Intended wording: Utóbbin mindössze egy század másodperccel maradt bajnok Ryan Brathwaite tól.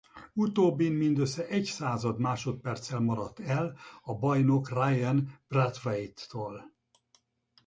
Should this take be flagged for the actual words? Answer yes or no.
yes